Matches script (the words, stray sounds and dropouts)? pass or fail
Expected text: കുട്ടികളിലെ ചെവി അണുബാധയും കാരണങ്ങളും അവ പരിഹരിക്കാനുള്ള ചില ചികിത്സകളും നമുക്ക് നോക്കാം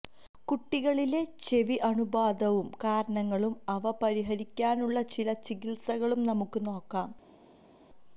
pass